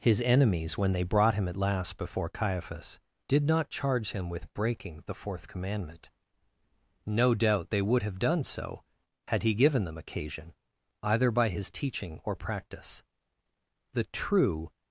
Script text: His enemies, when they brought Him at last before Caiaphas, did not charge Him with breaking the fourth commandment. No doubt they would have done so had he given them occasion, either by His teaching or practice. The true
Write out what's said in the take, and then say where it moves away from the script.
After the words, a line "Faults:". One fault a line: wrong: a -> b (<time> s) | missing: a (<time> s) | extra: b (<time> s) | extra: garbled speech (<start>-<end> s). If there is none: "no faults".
His enemies, when they brought Him at last before Caiaphas, did not charge Him with breaking the fourth commandment. No doubt they would have done so had he given them occasion, either by His teaching or practice. The true
Faults:
no faults